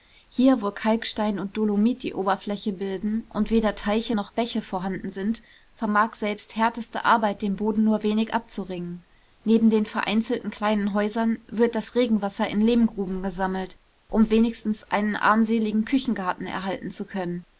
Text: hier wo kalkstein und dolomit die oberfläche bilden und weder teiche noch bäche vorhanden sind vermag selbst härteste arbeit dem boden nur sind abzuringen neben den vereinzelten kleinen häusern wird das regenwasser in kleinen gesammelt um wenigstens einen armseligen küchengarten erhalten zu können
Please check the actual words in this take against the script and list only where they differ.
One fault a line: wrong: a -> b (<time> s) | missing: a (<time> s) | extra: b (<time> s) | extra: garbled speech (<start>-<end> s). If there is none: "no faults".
wrong: sind -> wenig (8.0 s)
wrong: kleinen -> lehmgruben (12.6 s)